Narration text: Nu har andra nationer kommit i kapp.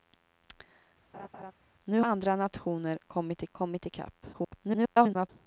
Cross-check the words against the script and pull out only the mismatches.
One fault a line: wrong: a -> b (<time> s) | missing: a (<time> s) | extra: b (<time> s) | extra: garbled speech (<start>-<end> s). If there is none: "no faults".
missing: har (2.0 s)
extra: kommit (3.5 s)
extra: garbled speech (4.3-5.3 s)